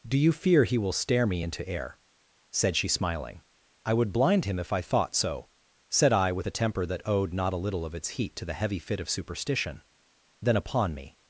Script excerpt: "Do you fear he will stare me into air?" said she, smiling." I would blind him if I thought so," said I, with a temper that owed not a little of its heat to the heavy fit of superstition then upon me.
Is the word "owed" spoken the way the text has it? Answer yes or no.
yes